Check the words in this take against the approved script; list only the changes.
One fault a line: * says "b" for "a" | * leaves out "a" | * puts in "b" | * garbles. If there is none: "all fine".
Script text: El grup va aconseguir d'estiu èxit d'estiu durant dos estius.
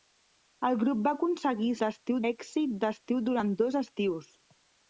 all fine